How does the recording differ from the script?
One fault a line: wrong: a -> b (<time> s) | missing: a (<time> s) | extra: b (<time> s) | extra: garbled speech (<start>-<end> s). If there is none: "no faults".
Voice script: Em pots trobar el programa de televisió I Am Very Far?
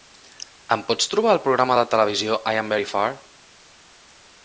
no faults